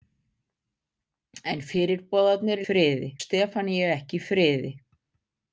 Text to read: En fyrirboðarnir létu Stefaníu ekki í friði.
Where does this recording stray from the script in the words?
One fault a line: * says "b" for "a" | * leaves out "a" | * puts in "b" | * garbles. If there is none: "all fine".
* says "friði" for "létu"